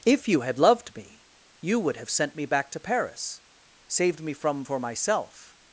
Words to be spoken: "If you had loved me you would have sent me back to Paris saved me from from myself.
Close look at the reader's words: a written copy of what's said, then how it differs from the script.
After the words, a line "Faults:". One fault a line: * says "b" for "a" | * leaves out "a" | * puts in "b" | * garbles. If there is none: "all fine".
"If you had loved me you would have sent me back to Paris saved me from for myself.
Faults:
* says "for" for "from"